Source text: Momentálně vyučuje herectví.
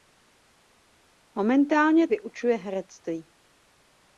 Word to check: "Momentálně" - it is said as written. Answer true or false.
true